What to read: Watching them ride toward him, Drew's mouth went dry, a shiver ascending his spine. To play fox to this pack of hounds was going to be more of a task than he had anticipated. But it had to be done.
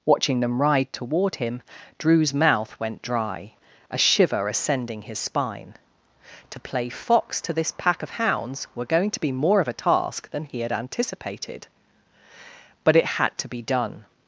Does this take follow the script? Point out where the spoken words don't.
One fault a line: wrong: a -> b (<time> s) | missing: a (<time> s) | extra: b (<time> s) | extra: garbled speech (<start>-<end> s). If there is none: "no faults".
wrong: was -> were (8.7 s)